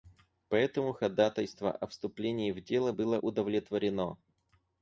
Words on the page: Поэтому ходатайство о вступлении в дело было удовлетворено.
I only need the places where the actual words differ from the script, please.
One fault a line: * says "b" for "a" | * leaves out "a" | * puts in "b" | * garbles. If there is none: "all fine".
all fine